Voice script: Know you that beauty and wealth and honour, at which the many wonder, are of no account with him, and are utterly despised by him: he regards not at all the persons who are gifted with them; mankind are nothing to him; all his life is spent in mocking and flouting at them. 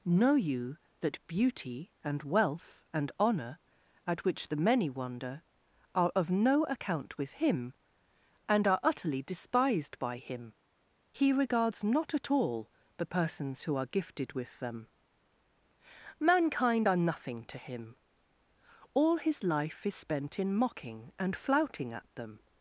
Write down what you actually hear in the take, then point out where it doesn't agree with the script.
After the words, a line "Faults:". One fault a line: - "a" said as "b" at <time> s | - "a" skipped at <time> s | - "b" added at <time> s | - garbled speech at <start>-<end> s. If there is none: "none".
Know you that beauty and wealth and honour, at which the many wonder, are of no account with him, and are utterly despised by him: he regards not at all the persons who are gifted with them; mankind are nothing to him; all his life is spent in mocking and flouting at them.
Faults:
none